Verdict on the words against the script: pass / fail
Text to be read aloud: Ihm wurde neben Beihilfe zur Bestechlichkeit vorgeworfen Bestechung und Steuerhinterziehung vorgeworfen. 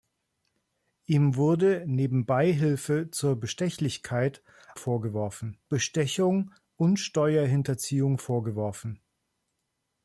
pass